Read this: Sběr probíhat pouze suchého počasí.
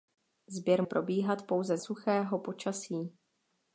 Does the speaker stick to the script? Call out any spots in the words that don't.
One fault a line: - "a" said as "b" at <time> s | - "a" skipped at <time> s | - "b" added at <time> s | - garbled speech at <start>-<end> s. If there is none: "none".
none